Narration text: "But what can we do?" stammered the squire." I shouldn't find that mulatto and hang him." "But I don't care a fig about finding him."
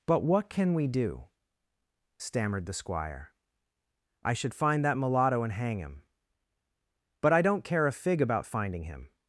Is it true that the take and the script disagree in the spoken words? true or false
true